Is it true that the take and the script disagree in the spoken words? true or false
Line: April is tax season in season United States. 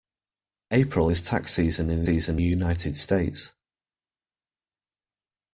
false